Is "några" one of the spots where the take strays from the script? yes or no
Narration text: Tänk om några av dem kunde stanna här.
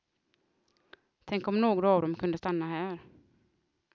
no